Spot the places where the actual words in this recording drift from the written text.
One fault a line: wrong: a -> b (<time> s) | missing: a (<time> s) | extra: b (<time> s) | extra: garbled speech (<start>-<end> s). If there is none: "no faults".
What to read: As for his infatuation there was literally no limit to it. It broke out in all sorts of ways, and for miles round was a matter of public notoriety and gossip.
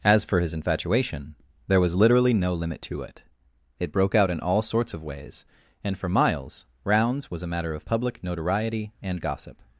wrong: round -> rounds (6.8 s)